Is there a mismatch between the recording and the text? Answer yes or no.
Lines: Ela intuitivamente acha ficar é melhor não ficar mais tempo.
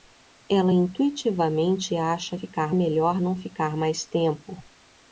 no